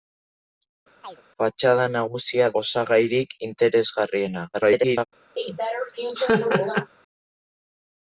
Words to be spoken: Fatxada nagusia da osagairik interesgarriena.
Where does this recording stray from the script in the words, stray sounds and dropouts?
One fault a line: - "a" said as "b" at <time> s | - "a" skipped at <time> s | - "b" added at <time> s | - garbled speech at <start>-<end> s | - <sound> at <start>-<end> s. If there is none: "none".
- chirp at 1.0-1.2 s
- "da" skipped at 2.5 s
- garbled speech at 4.5-5.1 s
- laugh at 5.4-6.9 s